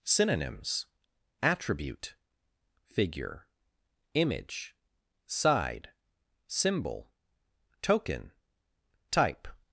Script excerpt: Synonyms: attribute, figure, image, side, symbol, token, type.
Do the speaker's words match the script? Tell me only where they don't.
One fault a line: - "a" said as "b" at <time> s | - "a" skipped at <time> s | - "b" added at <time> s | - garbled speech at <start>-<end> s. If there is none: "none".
none